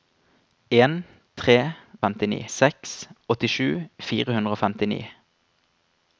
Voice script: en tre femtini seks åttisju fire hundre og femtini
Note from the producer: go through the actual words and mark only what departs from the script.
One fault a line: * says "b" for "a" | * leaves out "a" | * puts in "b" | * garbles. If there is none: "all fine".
all fine